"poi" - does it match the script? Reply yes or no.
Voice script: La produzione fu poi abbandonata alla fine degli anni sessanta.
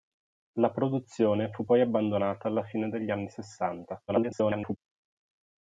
yes